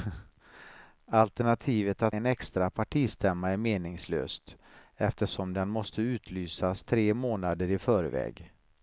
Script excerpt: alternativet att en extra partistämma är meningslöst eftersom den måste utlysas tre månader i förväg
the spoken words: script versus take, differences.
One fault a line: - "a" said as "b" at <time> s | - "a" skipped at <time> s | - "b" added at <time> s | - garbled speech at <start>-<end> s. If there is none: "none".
none